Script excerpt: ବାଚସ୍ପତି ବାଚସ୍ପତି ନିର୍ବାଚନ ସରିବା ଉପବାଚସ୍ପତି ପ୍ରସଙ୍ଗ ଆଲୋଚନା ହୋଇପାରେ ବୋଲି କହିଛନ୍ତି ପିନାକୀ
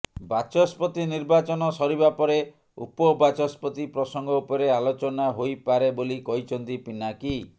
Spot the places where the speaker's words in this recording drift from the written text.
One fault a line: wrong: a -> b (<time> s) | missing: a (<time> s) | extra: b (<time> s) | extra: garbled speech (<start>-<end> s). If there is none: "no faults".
missing: ବାଚସ୍ପତି (1.0 s)
extra: ପରେ (2.2 s)
extra: ଉପରେ (4.4 s)